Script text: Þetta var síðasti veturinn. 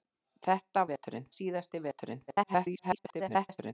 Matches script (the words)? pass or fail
fail